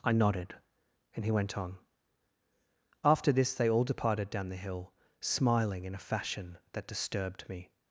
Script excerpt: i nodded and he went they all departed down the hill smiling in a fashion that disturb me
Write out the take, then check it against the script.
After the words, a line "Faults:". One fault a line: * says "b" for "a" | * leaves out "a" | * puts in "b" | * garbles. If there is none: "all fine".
i nodded and he went on after this they all departed down the hill smiling in a fashion that disturbed me
Faults:
* puts in "on after this"
* says "disturbed" for "disturb"